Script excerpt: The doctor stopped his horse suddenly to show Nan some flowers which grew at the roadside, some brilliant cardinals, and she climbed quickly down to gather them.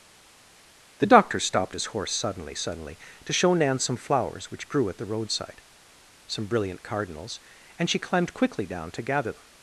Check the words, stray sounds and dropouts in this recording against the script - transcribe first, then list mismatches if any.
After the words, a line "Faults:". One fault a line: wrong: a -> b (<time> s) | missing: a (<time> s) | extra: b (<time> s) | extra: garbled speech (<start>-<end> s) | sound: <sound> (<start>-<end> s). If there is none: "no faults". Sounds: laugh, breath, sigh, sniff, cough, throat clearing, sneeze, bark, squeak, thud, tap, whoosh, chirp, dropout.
The doctor stopped his horse suddenly suddenly to show Nan some flowers which grew at the roadside, some brilliant cardinals, and she climbed quickly down to gather them.
Faults:
extra: suddenly (2.5 s)